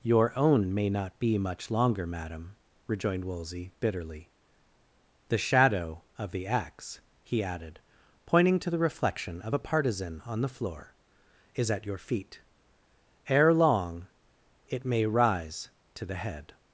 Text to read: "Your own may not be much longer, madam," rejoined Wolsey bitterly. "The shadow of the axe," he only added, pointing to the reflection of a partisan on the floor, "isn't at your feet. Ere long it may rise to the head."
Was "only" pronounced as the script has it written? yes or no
no